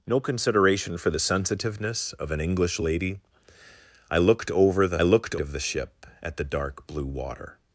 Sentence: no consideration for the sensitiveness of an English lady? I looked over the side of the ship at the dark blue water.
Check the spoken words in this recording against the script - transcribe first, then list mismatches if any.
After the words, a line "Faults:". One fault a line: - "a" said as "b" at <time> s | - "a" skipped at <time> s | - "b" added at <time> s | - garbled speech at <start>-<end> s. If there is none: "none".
no consideration for the sensitiveness of an English lady? I looked over the looked of the ship at the dark blue water.
Faults:
- "side" said as "looked" at 5.0 s